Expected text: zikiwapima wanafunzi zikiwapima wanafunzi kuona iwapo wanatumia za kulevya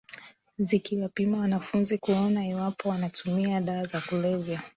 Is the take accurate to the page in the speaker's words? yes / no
no